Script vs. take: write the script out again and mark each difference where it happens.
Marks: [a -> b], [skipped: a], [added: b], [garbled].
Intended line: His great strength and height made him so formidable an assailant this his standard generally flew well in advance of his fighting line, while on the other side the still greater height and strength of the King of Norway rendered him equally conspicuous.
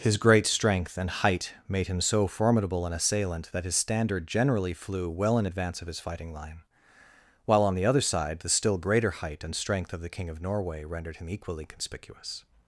His great strength and height made him so formidable an assailant [this -> that] his standard generally flew well in advance of his fighting line, while on the other side the still greater height and strength of the King of Norway rendered him equally conspicuous.